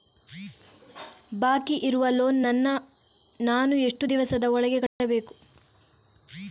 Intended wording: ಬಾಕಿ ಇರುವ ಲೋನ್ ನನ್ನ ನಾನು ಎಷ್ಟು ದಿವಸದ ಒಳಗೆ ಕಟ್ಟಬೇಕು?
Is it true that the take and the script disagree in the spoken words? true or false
false